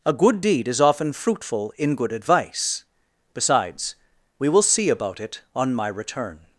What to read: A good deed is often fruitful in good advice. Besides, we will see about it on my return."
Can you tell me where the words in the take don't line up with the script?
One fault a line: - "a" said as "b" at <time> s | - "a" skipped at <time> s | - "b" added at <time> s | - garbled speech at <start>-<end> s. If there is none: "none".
none